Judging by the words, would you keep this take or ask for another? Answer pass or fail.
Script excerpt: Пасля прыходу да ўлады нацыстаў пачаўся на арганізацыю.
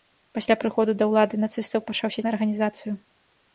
pass